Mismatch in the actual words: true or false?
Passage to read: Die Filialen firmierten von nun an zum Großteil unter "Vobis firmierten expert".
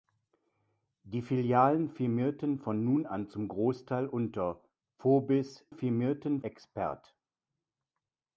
false